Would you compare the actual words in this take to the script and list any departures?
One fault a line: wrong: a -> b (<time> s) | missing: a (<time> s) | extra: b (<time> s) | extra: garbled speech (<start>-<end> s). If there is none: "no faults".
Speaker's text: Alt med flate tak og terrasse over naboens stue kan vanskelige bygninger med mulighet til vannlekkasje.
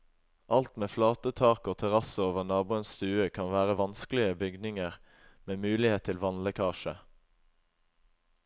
extra: være (3.5 s)